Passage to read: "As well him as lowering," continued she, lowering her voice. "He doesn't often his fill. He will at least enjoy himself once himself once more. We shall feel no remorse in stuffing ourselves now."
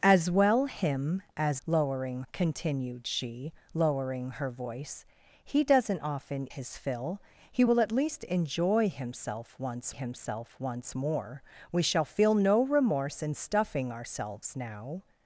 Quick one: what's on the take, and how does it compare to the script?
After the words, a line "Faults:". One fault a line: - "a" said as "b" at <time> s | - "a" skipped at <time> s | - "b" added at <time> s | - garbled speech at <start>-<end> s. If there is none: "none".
"As well him as lowering," continued she, lowering her voice. "He doesn't often his fill. He will at least enjoy himself once himself once more. We shall feel no remorse in stuffing ourselves now."
Faults:
none